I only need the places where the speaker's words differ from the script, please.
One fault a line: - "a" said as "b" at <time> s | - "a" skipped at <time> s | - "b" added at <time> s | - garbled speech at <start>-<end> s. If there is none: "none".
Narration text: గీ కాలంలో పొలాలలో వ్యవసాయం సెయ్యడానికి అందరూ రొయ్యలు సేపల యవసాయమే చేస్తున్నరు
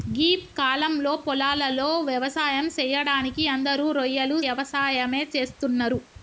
- "సేపల" skipped at 4.4 s